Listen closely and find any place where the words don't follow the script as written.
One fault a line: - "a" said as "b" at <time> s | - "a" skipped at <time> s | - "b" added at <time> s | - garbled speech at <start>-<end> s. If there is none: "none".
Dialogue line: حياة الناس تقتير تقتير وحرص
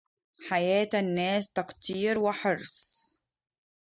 - "تقتير" skipped at 2.2 s